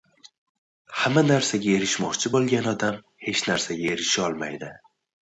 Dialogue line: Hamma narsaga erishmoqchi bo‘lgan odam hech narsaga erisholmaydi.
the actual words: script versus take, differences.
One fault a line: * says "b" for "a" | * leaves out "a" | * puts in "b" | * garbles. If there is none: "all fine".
all fine